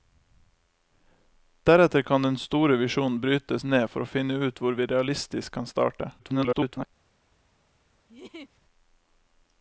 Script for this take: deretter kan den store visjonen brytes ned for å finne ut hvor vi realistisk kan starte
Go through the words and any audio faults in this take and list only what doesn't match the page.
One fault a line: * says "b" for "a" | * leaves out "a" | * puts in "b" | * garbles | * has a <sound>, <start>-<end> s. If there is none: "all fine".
* garbles
* has a laugh, 8.1-8.6 s